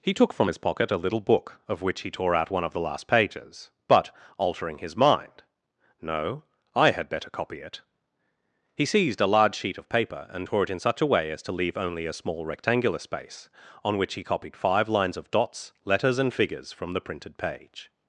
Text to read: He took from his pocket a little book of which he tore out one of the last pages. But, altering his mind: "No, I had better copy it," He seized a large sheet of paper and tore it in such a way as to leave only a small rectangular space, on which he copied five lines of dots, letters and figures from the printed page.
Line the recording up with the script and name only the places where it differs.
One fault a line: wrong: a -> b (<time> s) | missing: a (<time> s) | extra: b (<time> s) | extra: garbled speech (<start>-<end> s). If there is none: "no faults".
no faults